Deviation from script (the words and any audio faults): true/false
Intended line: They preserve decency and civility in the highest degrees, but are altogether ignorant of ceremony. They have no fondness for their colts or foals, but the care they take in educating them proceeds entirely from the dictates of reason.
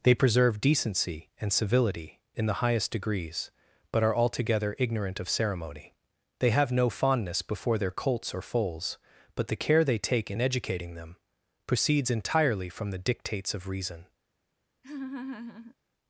true